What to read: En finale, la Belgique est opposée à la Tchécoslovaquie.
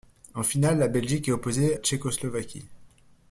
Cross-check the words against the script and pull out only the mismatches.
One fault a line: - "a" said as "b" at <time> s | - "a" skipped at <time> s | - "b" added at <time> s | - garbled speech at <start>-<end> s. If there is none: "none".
- "à la" skipped at 1.8 s